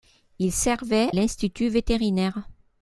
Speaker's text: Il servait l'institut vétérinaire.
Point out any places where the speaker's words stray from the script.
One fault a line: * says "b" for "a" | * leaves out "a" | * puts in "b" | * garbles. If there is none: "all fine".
all fine